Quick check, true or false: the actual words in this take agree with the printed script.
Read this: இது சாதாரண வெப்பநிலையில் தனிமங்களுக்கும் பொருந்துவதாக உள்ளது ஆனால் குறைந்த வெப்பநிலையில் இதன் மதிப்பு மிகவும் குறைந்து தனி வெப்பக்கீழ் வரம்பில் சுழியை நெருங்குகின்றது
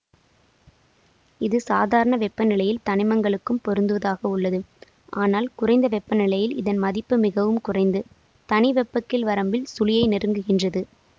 true